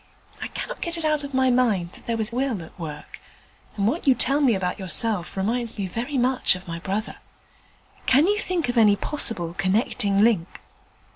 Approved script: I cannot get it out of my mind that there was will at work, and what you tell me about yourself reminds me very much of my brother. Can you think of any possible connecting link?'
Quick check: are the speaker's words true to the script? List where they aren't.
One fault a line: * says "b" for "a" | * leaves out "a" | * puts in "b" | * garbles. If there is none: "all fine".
all fine